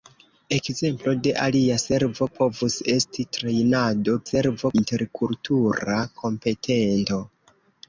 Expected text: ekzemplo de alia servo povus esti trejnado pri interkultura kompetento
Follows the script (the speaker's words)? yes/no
no